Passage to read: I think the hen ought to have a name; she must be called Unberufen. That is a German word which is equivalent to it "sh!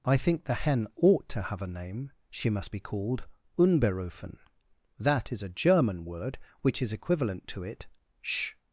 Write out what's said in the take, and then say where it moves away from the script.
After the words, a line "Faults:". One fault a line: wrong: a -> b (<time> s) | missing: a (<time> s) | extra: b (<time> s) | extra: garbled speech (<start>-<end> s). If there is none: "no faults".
I think the hen ought to have a name; she must be called Unberufen. That is a German word which is equivalent to it "sh!
Faults:
no faults